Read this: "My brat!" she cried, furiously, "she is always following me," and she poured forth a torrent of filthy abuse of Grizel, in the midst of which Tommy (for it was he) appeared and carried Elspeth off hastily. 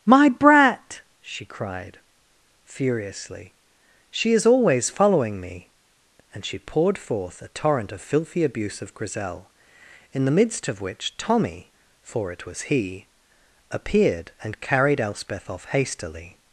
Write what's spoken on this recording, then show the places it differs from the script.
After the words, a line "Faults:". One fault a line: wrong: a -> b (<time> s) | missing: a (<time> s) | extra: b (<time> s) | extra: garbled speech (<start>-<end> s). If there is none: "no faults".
"My brat!" she cried, furiously, "she is always following me," and she poured forth a torrent of filthy abuse of Grizel, in the midst of which Tommy (for it was he) appeared and carried Elspeth off hastily.
Faults:
no faults